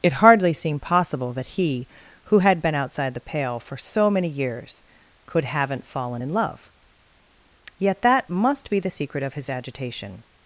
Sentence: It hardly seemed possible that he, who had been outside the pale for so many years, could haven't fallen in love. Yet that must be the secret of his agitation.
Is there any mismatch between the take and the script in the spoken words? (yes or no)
no